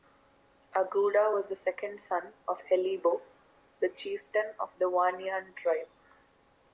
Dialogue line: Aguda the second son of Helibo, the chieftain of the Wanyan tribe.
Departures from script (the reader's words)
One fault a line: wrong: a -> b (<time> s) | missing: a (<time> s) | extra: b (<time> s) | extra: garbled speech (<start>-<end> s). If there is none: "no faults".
extra: was (1.3 s)